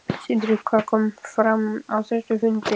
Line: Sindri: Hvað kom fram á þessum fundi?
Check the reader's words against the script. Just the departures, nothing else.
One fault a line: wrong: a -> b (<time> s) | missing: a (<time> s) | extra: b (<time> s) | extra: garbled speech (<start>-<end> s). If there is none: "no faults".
no faults